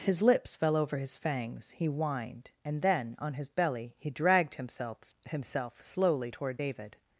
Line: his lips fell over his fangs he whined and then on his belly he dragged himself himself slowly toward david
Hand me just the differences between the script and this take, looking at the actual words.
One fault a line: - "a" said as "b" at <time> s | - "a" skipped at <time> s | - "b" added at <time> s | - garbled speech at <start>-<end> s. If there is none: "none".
none